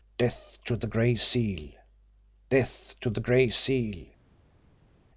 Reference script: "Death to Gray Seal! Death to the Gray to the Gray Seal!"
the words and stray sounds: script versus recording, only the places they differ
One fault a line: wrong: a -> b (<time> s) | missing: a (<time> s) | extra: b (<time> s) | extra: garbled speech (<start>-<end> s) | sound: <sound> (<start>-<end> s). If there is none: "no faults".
extra: the (0.8 s)
missing: to the Gray (3.5 s)